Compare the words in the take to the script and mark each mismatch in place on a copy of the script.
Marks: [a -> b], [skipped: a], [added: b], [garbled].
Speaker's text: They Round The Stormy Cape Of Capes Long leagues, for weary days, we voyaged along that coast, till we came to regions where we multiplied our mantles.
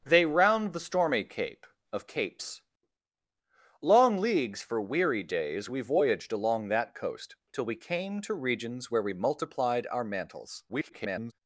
They Round The Stormy Cape Of Capes Long leagues, for weary days, we voyaged along that coast, till we came to regions where we multiplied our mantles. [garbled]